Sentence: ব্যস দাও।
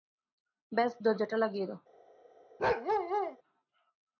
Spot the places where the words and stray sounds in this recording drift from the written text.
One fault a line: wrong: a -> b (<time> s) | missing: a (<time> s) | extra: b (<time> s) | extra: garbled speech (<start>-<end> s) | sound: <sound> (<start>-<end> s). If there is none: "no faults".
extra: দরজাটা লাগিয়ে (1.0 s)
sound: bark (2.6-3.4 s)